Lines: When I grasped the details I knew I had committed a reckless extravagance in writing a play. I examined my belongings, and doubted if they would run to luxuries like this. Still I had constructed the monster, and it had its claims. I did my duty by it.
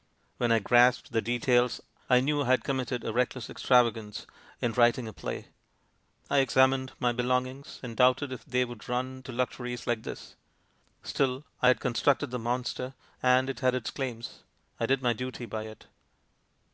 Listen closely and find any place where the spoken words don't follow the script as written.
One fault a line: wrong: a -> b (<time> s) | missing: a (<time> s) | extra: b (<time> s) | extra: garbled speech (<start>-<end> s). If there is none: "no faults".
no faults